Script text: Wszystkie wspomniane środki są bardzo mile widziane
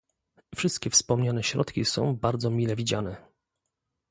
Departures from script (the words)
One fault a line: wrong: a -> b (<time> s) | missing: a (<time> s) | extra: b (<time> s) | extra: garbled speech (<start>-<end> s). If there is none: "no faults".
no faults